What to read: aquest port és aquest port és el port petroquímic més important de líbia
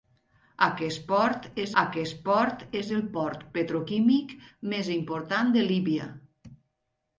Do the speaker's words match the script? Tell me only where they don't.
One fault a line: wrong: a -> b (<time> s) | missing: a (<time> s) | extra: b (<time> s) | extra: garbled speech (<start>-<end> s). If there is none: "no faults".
no faults